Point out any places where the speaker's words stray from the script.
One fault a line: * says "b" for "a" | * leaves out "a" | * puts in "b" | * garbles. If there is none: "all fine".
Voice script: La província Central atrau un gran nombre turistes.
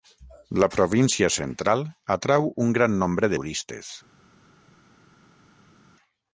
all fine